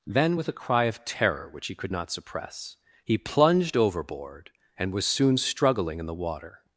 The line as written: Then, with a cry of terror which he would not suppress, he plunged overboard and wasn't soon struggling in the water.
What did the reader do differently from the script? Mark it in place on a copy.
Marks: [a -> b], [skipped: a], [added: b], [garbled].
Then, with a cry of terror which he [would -> could] not suppress, he plunged overboard and [wasn't -> was] soon struggling in the water.